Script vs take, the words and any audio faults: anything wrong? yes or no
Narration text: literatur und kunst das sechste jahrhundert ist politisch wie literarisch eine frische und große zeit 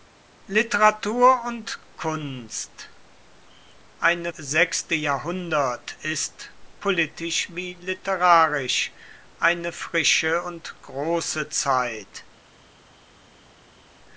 yes